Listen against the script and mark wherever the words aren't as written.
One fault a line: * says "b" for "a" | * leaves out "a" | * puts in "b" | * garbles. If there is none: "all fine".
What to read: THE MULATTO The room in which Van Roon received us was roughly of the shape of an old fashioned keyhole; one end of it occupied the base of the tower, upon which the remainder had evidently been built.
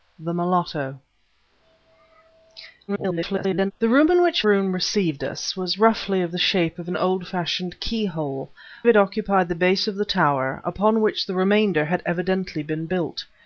* garbles
* leaves out "Van"
* leaves out "one end"